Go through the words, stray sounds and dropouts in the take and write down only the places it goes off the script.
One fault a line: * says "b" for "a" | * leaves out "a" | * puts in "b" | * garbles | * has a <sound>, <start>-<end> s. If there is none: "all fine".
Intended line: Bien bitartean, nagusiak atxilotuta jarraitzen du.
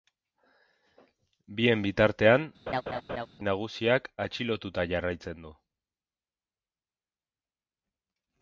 * has a laugh, 2.7-3.3 s